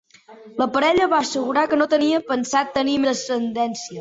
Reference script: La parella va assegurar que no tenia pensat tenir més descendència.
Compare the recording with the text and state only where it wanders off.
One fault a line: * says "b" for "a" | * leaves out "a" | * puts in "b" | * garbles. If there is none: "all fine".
* leaves out "més"